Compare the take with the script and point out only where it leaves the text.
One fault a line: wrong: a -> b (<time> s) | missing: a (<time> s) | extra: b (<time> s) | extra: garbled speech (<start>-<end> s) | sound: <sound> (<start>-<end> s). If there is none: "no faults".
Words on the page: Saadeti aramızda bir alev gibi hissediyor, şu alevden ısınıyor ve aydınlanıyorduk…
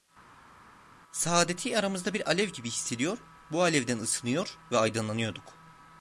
wrong: şu -> bu (3.5 s)